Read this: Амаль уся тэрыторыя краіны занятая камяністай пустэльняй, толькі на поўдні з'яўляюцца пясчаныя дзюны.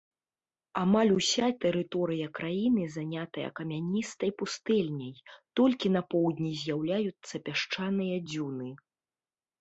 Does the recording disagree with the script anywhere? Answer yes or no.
no